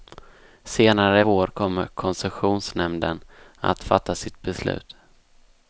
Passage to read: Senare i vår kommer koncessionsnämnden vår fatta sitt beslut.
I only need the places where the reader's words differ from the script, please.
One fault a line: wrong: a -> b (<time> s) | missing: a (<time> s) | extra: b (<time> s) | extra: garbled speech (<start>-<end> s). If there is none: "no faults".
wrong: vår -> att (3.6 s)